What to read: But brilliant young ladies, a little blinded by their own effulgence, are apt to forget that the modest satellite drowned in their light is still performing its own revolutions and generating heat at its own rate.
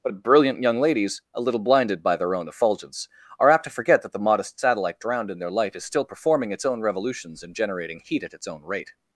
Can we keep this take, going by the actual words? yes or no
yes